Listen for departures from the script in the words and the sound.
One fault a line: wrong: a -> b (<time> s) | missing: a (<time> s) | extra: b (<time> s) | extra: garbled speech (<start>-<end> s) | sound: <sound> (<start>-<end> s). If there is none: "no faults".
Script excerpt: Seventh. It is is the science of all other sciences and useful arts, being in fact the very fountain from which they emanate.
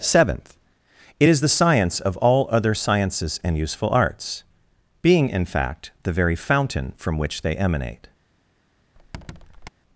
missing: is (1.4 s)
sound: squeak (9.0-9.7 s)